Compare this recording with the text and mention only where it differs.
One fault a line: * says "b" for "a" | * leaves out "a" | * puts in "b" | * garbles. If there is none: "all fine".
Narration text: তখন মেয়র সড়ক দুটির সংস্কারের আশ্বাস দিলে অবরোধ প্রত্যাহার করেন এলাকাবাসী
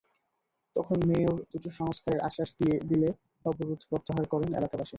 * leaves out "সড়ক"